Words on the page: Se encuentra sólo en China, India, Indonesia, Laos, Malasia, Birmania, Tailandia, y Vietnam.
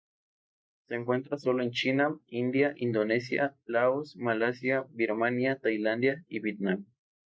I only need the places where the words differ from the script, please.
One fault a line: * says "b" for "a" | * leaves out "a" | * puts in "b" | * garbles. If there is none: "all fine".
all fine